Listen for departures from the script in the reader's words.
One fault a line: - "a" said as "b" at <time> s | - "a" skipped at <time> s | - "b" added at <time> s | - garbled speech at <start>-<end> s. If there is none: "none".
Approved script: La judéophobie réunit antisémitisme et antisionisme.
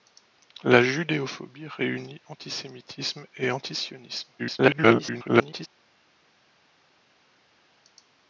- garbled speech at 4.4-5.7 s